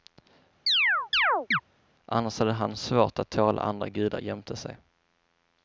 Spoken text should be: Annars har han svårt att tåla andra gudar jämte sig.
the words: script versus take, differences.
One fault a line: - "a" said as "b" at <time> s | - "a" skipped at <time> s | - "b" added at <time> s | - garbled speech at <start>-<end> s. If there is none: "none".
- "har" said as "hade" at 2.4 s